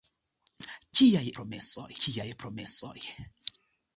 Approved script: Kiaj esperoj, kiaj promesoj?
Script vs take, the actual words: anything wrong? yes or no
yes